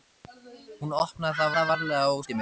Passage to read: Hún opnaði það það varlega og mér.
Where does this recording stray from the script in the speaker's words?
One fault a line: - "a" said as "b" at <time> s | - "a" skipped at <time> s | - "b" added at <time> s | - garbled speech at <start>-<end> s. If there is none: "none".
none